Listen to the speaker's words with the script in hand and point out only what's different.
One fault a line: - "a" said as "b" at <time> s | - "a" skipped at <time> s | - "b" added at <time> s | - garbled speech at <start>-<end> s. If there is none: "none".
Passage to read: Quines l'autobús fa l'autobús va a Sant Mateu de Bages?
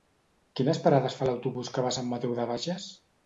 - "l'autobús" said as "parades" at 0.8 s
- "que" added at 1.8 s